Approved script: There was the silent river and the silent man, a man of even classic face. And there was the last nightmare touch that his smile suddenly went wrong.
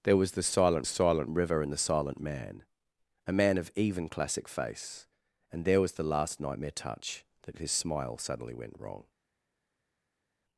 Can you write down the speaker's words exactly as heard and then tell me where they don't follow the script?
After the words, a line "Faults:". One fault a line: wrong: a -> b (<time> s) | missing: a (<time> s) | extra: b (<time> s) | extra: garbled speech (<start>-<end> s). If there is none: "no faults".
There was the silent silent river and the silent man, a man of even classic face. And there was the last nightmare touch that his smile suddenly went wrong.
Faults:
extra: silent (0.8 s)